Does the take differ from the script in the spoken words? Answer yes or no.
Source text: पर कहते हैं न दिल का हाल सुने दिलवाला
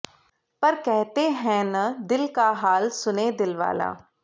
no